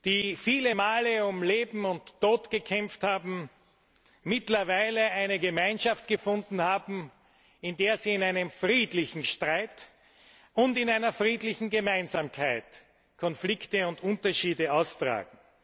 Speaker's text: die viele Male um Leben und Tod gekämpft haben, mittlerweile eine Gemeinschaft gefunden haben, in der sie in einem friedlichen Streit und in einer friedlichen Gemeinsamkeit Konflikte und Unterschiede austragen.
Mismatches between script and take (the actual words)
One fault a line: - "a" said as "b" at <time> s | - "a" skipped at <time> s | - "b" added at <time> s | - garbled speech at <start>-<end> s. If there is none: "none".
none